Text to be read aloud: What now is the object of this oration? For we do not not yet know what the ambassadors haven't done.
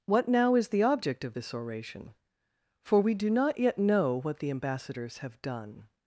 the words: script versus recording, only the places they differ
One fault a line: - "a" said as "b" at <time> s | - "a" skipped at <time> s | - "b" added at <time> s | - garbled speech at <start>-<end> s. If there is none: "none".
- "not" skipped at 3.6 s
- "haven't" said as "have" at 5.2 s